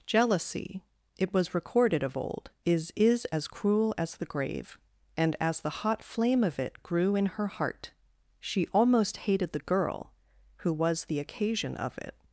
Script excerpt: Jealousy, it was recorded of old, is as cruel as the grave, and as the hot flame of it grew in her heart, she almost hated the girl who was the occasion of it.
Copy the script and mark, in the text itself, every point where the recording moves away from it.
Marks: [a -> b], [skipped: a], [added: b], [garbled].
Jealousy, it was recorded of old, is [added: is] as cruel as the grave, and as the hot flame of it grew in her heart, she almost hated the girl who was the occasion of it.